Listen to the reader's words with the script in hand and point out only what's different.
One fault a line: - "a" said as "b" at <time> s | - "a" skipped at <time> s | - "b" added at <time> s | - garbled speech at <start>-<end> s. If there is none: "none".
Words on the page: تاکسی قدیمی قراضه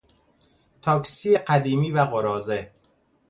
- "و" added at 1.9 s